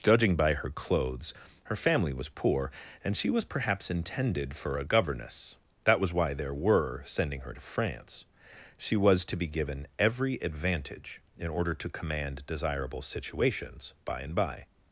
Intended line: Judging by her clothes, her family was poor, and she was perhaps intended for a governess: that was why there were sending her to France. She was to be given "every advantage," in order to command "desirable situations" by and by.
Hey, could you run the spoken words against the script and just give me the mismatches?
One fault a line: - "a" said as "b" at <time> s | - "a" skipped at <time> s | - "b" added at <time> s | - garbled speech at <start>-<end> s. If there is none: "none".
none